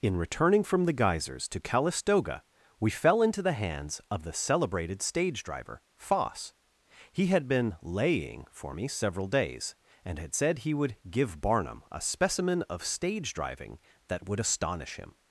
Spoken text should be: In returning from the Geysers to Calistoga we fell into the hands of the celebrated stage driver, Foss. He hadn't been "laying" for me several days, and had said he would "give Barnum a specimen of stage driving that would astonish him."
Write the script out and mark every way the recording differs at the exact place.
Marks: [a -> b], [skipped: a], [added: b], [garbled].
In returning from the Geysers to Calistoga we fell into the hands of the celebrated stage driver, Foss. He [hadn't -> had] been "laying" for me several days, and had said he would "give Barnum a specimen of stage driving that would astonish him."